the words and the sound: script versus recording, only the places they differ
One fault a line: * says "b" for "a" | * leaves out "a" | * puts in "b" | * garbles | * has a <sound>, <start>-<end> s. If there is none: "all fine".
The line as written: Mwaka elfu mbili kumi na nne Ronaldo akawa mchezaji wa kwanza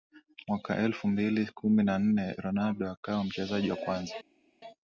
all fine